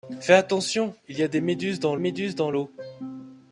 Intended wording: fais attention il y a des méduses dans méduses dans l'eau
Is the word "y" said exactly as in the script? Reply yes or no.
yes